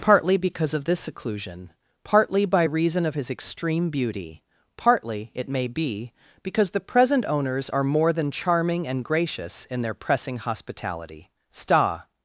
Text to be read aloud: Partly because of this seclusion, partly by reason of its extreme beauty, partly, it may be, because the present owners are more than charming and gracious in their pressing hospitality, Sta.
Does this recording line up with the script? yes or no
no